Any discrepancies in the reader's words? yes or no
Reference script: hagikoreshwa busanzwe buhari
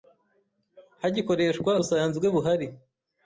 no